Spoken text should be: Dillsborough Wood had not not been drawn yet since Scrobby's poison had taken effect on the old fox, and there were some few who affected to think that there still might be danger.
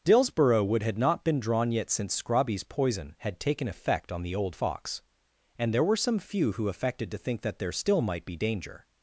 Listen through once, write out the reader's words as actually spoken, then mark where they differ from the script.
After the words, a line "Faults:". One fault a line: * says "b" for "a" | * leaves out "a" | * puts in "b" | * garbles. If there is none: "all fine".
Dillsborough Wood had not been drawn yet since Scrobby's poison had taken effect on the old fox, and there were some few who affected to think that there still might be danger.
Faults:
* leaves out "not"